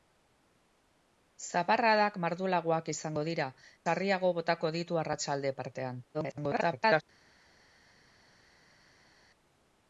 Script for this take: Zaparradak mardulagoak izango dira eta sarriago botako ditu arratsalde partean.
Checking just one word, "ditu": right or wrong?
right